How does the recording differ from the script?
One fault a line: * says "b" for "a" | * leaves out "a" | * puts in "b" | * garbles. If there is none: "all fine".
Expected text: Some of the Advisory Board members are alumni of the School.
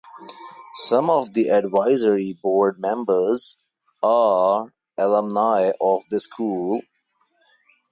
all fine